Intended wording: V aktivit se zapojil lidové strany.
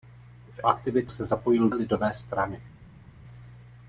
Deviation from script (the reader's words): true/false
false